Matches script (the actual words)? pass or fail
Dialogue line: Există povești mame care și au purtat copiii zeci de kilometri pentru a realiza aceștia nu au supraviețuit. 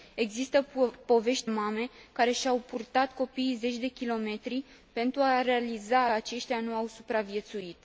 pass